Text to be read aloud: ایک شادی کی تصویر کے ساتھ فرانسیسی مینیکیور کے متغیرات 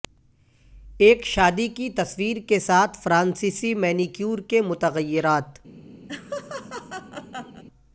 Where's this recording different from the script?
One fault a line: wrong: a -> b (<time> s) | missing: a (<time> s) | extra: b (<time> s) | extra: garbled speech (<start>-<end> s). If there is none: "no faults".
no faults